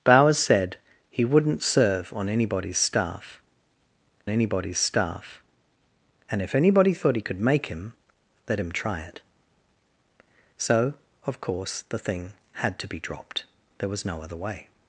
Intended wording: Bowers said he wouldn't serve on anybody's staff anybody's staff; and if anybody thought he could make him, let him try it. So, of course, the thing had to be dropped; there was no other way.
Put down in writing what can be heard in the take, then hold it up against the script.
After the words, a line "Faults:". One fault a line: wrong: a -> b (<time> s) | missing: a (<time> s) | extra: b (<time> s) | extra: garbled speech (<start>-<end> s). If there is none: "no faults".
Bowers said he wouldn't serve on anybody's staff anybody's staff; and if anybody thought he could make him, let him try it. So, of course, the thing had to be dropped; there was no other way.
Faults:
no faults